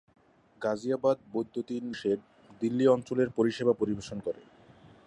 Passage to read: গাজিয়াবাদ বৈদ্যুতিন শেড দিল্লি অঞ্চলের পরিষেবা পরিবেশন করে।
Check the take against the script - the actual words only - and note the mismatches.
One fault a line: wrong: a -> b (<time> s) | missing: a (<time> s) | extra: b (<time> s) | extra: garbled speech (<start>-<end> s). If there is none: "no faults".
no faults